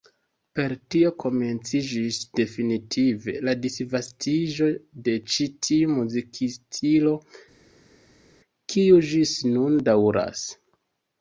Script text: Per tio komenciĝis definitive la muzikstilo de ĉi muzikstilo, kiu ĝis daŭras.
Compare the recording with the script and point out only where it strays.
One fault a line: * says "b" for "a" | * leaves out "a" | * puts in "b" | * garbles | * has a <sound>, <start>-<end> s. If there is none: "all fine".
* says "disvastiĝo" for "muzikstilo"
* puts in "tiu"
* puts in "nun"